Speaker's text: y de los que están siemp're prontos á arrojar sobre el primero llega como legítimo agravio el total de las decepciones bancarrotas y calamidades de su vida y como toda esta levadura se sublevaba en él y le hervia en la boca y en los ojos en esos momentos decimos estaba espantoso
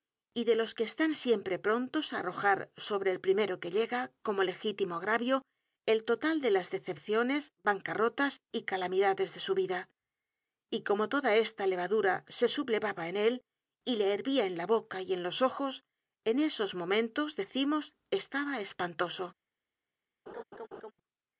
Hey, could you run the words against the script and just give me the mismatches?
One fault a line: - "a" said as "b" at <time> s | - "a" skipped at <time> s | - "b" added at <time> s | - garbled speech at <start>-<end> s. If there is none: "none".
- "que" added at 3.6 s